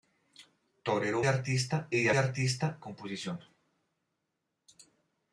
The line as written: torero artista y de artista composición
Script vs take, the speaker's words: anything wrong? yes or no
no